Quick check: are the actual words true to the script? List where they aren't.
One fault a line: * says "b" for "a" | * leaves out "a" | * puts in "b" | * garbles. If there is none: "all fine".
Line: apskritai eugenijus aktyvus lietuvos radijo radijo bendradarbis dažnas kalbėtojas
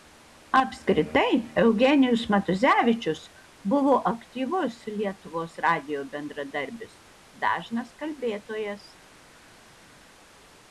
* puts in "matuzevičius buvo"
* leaves out "radijo"